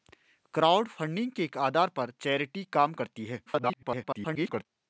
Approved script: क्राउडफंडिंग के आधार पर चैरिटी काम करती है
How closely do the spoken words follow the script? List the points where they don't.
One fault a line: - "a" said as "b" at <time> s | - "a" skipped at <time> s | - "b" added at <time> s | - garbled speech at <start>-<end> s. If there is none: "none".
- garbled speech at 3.5-4.7 s